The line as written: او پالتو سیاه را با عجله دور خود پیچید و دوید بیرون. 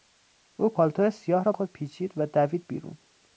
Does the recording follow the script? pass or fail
fail